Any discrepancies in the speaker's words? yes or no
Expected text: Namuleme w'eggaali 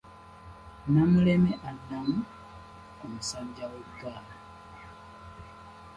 yes